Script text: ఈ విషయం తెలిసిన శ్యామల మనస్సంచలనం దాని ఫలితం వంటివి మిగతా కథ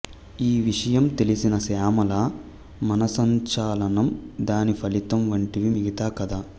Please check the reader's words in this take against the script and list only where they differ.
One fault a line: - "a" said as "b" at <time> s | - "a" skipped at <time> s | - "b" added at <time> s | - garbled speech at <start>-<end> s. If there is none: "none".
none